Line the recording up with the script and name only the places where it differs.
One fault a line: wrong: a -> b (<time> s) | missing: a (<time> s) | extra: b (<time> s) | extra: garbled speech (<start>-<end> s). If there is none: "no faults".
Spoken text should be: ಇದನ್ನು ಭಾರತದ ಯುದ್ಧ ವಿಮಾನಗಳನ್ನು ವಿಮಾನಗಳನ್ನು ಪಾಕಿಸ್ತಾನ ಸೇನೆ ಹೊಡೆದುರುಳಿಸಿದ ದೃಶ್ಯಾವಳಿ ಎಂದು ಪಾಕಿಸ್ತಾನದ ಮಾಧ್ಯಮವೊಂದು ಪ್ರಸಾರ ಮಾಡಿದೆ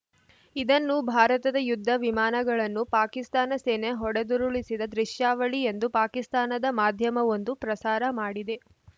missing: ವಿಮಾನಗಳನ್ನು (2.8 s)